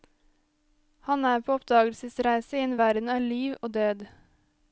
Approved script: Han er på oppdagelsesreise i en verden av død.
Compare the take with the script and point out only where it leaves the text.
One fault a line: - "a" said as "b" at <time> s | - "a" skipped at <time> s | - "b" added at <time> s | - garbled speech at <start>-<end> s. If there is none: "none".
- "liv og" added at 3.3 s